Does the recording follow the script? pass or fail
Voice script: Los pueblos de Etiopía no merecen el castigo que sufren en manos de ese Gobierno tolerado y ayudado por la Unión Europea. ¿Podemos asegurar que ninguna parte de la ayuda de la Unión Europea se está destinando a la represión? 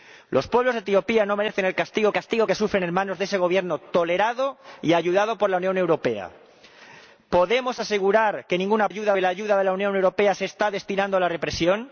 fail